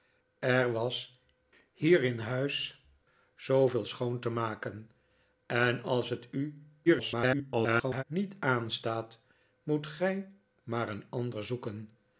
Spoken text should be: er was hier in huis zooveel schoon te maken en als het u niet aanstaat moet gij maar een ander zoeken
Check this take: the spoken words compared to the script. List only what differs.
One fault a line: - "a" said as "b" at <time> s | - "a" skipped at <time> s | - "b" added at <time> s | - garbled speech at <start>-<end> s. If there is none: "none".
- garbled speech at 6.9-8.0 s